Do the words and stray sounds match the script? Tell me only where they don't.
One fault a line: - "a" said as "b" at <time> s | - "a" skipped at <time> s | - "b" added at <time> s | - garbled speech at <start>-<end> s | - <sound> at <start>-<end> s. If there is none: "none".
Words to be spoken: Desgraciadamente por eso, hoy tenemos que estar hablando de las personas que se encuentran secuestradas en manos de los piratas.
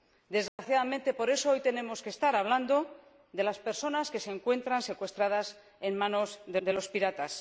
- dropout at 0.5-0.6 s
- "de" added at 6.6 s